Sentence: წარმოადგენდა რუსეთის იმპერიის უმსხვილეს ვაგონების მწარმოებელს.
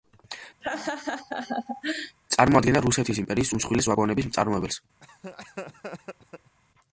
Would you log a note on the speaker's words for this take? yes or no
no